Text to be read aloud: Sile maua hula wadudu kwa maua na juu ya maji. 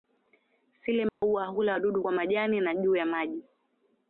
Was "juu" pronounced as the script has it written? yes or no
yes